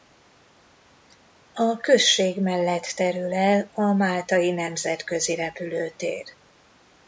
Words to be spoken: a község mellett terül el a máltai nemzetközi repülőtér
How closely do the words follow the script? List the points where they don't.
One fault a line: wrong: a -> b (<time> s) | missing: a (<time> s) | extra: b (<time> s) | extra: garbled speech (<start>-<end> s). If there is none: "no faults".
no faults